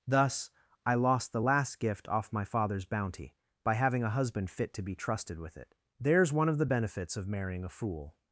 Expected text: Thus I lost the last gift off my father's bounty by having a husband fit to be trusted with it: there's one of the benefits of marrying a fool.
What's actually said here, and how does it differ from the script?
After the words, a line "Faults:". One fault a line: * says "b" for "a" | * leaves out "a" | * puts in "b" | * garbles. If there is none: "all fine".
Thus I lost the last gift off my father's bounty by having a husband fit to be trusted with it: there's one of the benefits of marrying a fool.
Faults:
all fine